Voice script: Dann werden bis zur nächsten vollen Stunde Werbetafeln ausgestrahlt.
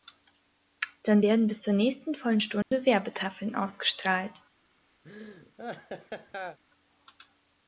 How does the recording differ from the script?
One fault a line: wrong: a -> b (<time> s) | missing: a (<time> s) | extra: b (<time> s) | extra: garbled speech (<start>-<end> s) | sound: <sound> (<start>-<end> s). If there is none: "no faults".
sound: dropout (2.6-2.7 s)
sound: laugh (5.0-6.6 s)